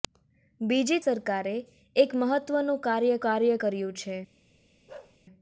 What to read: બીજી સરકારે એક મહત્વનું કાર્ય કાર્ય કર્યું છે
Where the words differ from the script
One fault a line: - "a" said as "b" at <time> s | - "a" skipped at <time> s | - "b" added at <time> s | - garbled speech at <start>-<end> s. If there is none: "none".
none